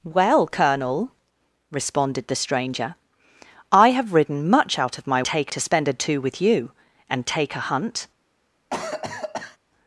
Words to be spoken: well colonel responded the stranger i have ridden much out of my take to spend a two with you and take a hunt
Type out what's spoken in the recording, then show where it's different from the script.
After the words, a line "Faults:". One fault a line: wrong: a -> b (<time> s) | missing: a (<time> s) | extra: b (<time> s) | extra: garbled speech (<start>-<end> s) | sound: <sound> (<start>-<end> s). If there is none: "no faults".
well colonel responded the stranger i have ridden much out of my take to spend a two with you and take a hunt
Faults:
sound: cough (8.7-9.6 s)